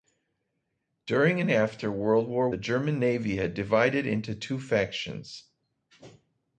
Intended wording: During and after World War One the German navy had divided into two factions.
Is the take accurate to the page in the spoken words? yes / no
no